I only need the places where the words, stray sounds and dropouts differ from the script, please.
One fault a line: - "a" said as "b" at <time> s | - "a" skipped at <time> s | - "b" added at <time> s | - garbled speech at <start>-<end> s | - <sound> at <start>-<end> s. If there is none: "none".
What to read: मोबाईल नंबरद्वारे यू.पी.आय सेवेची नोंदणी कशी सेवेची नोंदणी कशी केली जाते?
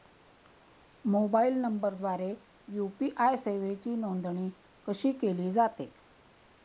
- "सेवेची नोंदणी कशी" skipped at 5.1 s